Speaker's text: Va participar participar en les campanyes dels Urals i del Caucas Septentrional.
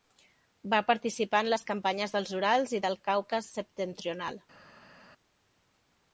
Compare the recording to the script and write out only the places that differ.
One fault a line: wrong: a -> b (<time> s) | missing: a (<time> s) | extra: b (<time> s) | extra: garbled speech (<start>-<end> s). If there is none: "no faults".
missing: participar (1.4 s)